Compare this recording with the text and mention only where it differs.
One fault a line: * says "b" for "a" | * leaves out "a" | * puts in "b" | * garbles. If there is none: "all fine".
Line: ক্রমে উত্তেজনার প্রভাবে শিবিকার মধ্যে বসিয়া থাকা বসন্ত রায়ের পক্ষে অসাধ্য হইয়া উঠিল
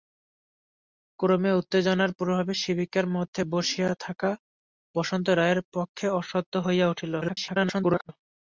* garbles